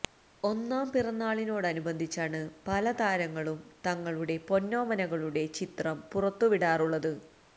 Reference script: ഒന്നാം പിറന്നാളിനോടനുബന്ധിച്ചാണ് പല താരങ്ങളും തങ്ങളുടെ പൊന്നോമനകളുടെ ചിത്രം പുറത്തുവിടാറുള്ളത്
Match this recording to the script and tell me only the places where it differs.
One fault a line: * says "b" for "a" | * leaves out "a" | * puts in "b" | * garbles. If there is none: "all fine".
all fine